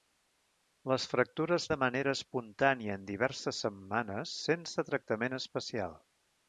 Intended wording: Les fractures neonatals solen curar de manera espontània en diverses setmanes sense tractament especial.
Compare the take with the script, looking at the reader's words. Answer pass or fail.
fail